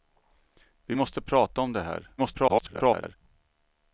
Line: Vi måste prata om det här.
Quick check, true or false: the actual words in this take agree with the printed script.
false